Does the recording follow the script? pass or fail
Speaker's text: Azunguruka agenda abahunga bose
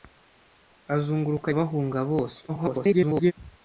fail